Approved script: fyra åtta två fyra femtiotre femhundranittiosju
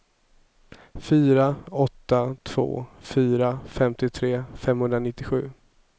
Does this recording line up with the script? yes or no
yes